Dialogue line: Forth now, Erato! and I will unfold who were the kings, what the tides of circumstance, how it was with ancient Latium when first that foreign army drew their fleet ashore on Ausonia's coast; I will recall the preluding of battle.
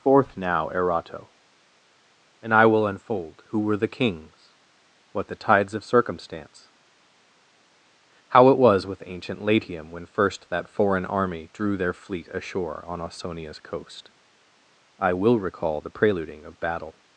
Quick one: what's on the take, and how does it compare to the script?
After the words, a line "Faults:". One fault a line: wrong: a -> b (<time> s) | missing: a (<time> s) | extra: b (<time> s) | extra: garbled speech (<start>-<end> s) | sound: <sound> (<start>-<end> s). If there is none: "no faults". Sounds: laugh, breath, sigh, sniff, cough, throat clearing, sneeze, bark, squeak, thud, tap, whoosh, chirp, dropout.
Forth now, Erato! and I will unfold who were the kings, what the tides of circumstance, how it was with ancient Latium when first that foreign army drew their fleet ashore on Ausonia's coast; I will recall the preluding of battle.
Faults:
no faults